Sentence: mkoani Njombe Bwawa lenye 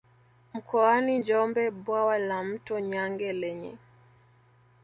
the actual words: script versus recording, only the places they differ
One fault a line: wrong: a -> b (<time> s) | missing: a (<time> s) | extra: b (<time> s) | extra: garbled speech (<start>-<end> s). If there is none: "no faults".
extra: la Mto Nyange (2.2 s)